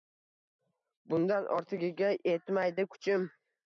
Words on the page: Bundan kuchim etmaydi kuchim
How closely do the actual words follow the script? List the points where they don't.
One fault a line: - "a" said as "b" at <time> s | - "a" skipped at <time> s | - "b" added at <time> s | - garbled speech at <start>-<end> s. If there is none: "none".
- "kuchim" said as "ortigiga" at 1.6 s